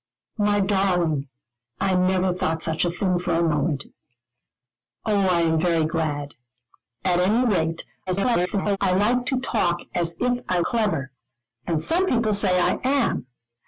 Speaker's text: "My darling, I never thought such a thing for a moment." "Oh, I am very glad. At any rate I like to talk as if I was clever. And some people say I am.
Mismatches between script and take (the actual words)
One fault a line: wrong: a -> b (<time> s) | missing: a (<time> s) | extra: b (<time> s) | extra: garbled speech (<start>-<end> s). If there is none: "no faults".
extra: garbled speech (8.1-8.8 s)
missing: was (10.6 s)